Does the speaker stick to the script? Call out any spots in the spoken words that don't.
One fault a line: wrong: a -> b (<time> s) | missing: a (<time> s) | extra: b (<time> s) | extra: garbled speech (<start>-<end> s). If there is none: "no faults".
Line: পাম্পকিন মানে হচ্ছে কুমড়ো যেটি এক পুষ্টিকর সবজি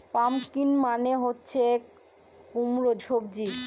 missing: যেটি এক পুষ্টিকর (2.9 s)